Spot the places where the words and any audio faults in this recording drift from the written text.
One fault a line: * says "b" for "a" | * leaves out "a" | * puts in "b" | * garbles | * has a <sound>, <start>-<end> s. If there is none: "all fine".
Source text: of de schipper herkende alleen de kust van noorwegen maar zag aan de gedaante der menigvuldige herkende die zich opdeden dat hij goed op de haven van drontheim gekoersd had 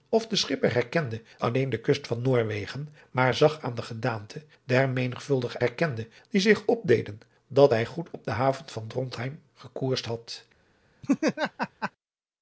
* has a laugh, 11.0-11.9 s